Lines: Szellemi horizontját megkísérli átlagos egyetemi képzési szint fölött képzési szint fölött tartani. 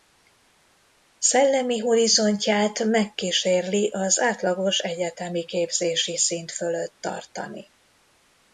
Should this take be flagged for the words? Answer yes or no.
yes